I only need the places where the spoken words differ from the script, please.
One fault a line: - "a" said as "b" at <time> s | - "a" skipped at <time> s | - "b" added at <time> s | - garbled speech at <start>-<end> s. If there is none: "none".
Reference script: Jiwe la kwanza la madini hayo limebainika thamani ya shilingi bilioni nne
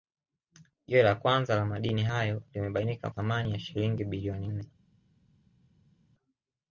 none